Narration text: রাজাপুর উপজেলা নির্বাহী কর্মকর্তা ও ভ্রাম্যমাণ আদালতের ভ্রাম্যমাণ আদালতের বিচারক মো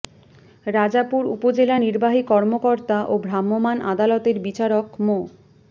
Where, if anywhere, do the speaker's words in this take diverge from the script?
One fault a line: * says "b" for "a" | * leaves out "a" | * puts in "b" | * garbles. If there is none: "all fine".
* leaves out "ভ্রাম্যমাণ আদালতের"